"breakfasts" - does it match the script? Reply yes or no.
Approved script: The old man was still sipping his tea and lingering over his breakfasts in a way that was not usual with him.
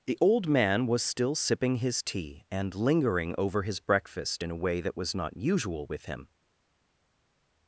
no